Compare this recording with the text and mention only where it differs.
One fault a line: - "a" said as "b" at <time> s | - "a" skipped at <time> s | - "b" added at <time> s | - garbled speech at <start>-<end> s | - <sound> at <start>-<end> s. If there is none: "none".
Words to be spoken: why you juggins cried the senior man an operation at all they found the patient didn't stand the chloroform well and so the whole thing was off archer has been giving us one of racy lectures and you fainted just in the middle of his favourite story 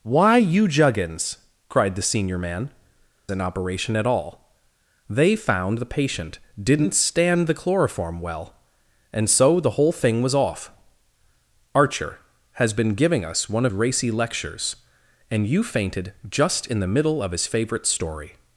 none